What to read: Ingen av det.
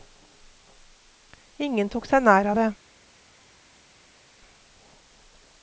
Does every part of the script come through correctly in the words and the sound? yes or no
no